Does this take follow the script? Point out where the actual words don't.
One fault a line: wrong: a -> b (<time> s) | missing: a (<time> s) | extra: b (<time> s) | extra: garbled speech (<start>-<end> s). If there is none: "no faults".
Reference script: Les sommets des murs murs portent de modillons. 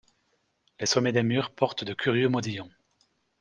missing: murs (1.5 s)
extra: curieux (1.9 s)